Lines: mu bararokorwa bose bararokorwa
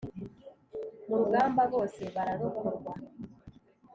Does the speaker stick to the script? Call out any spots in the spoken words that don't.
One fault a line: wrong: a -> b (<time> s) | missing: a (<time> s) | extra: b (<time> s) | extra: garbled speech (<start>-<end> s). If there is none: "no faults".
wrong: bararokorwa -> rugamba (1.2 s)